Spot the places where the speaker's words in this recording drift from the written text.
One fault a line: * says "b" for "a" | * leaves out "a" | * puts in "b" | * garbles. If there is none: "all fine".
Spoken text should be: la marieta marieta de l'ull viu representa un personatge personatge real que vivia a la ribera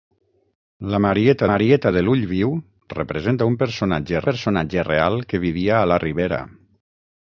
all fine